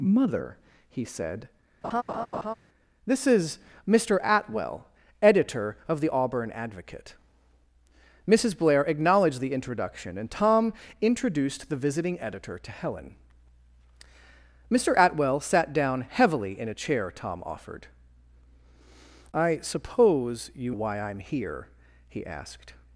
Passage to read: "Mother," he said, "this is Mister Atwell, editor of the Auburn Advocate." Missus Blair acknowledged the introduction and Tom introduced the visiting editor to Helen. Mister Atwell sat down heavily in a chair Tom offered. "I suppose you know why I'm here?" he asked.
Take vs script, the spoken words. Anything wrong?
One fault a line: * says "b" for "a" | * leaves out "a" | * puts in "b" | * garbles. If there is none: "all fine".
* leaves out "know"